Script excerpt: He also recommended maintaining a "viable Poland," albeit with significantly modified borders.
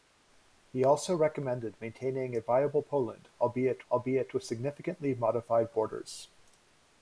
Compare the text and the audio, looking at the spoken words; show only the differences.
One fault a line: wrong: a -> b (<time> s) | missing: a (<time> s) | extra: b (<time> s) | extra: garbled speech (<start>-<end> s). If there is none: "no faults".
extra: albeit (3.9 s)